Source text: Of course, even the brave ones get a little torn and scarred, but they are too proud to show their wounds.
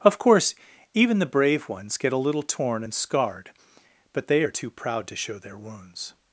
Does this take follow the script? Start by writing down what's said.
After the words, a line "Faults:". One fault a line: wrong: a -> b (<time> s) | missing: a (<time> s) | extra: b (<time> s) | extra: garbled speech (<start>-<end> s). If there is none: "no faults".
Of course, even the brave ones get a little torn and scarred, but they are too proud to show their wounds.
Faults:
no faults